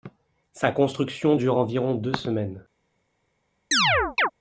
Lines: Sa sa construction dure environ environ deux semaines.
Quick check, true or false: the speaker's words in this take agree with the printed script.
false